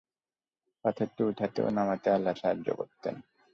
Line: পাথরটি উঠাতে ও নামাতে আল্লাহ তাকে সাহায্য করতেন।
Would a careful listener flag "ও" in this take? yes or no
no